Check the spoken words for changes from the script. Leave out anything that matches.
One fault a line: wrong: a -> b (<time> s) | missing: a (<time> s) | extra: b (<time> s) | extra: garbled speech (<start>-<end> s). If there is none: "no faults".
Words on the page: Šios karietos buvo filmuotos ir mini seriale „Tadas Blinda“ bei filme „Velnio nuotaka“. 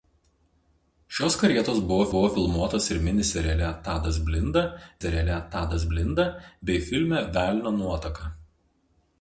extra: buvo (2.1 s)
extra: seriale Tadas Blinda (5.0 s)